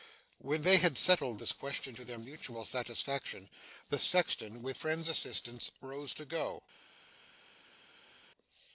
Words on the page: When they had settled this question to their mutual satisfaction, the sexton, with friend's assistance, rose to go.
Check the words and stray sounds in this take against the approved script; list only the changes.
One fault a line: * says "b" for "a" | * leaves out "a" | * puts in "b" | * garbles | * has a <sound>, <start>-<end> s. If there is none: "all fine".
all fine